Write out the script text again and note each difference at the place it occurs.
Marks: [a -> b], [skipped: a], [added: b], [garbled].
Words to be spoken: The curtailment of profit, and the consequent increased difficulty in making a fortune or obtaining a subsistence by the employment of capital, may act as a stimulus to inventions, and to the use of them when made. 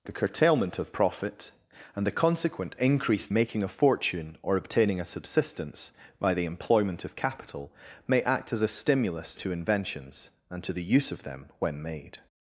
The curtailment of profit, and the consequent increased [skipped: difficulty in] making a fortune or obtaining a subsistence by the employment of capital, may act as a stimulus to inventions, and to the use of them when made.